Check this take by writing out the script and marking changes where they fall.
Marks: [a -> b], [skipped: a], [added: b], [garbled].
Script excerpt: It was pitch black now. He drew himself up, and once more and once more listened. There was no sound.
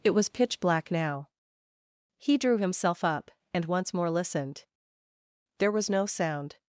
It was pitch black now. He drew himself up, and once more [skipped: and once more] listened. There was no sound.